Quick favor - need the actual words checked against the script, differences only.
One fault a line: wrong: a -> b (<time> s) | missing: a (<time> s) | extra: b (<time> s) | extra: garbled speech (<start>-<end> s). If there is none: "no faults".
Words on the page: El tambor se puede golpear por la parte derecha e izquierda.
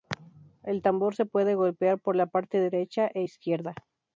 no faults